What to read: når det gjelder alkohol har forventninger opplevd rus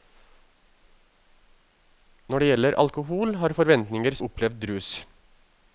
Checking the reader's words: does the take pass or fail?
pass